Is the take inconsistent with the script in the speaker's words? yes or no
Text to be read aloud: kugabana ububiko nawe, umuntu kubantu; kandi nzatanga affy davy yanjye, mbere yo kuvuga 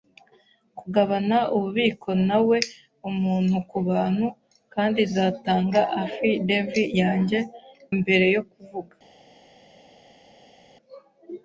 no